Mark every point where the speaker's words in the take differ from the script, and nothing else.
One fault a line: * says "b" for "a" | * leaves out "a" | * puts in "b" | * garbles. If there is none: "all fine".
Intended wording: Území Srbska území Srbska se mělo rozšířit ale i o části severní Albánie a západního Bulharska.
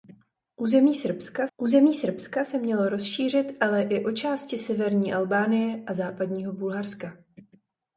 all fine